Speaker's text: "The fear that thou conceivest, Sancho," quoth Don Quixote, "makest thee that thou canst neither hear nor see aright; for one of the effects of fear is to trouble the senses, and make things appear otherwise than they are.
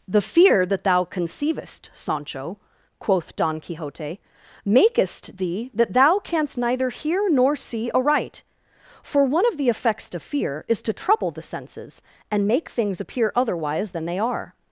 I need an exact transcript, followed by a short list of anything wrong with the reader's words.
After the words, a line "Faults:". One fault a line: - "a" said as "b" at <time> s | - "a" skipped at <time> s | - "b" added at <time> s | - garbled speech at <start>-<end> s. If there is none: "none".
"The fear that thou conceivest, Sancho," quoth Don Quixote, "makest thee that thou canst neither hear nor see aright; for one of the effects of fear is to trouble the senses, and make things appear otherwise than they are.
Faults:
none